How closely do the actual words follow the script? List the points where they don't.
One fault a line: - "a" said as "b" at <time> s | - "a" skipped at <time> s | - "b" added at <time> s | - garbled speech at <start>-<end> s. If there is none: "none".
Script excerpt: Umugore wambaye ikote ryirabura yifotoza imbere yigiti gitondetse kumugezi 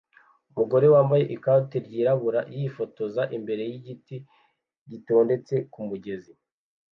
none